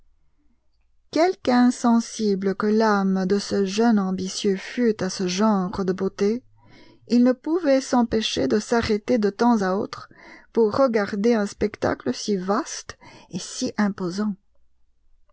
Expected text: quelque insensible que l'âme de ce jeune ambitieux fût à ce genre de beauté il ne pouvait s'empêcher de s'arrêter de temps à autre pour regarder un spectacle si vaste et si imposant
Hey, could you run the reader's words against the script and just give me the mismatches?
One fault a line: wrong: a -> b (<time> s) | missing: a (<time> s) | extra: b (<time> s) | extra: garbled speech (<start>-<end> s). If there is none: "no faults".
no faults